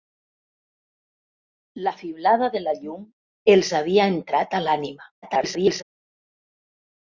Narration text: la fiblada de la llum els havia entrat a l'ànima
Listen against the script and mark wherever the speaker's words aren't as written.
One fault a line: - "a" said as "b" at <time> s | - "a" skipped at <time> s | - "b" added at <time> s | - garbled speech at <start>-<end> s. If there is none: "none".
- garbled speech at 5.2-5.8 s